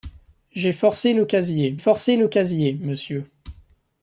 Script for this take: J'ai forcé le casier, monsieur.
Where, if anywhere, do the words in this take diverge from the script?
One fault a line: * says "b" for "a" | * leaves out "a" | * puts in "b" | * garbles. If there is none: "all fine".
* puts in "forcé le casier"